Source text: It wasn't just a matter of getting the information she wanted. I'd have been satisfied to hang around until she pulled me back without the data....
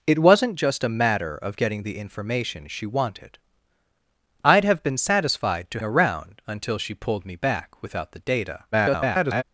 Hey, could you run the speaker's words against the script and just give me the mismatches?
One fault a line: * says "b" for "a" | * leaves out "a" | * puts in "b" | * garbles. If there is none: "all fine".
* leaves out "hang"
* garbles